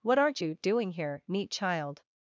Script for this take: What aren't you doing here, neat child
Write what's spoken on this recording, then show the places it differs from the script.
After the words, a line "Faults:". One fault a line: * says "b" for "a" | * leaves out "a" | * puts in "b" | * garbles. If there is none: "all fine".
What aren't you doing here, neat child
Faults:
all fine